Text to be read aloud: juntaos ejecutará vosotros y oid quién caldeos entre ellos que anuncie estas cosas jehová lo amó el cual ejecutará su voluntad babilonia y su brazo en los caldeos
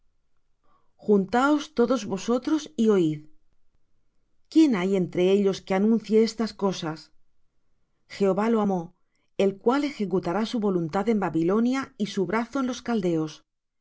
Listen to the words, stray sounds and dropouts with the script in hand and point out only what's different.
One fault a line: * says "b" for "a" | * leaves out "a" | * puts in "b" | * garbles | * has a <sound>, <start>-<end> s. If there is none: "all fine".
* says "todos" for "ejecutará"
* says "hay" for "caldeos"
* puts in "en"